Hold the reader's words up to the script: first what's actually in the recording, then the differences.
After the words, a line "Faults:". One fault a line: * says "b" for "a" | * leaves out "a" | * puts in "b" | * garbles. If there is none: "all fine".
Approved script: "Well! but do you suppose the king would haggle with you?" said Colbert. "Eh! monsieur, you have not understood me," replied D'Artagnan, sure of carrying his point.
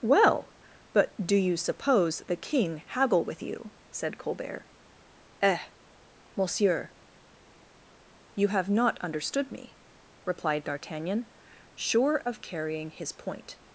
"Well! but do you suppose the king haggle with you?" said Colbert. "Eh! monsieur, you have not understood me," replied D'Artagnan, sure of carrying his point.
Faults:
* leaves out "would"